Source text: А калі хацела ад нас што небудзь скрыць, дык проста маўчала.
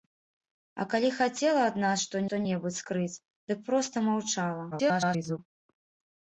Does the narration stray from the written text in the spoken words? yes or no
yes